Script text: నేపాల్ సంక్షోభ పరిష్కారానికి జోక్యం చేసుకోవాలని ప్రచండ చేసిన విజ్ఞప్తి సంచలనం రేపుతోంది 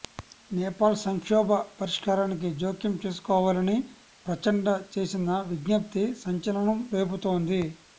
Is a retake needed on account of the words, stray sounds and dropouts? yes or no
no